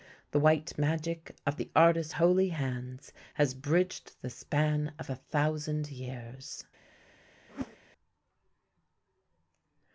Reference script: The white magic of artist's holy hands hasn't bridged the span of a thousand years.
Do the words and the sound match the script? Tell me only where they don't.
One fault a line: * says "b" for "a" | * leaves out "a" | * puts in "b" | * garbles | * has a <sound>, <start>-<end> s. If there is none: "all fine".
* puts in "the"
* says "has" for "hasn't"
* has a whoosh, 7.5-7.8 s